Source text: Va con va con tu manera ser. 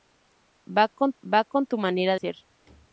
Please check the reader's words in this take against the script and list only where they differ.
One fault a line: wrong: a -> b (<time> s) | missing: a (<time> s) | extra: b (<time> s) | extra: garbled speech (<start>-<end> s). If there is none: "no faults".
no faults